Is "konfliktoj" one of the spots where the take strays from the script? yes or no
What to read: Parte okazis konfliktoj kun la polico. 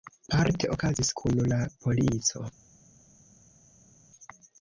yes